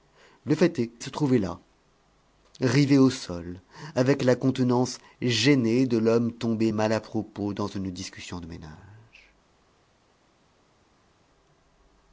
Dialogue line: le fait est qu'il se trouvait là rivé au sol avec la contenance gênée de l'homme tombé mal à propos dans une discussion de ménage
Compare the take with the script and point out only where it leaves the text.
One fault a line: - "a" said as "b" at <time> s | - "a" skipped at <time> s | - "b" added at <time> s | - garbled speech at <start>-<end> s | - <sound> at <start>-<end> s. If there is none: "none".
- "qu'il" skipped at 0.9 s